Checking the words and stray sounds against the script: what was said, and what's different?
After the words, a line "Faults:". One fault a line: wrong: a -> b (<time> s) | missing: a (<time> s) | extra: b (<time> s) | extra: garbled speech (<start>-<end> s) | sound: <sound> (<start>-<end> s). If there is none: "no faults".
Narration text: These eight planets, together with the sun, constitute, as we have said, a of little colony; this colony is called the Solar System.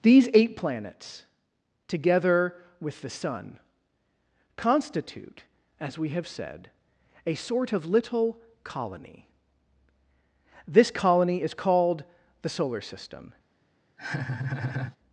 These eight planets, together with the sun, constitute, as we have said, a sort of little colony; this colony is called the Solar System.
Faults:
extra: sort (7.3 s)
sound: laugh (14.0-15.0 s)